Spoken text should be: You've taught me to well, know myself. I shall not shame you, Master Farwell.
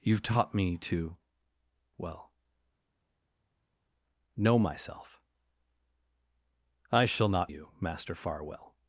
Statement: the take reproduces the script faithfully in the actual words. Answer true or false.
false